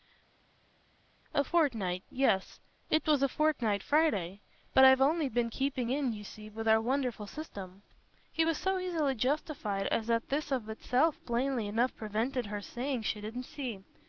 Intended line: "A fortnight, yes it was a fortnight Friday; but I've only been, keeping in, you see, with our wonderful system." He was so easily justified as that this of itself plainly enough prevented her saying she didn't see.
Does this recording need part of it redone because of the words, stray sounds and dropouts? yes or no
no